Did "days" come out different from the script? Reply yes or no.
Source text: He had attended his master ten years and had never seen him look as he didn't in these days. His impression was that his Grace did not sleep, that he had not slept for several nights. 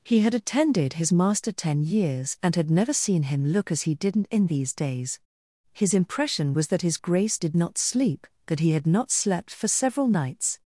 no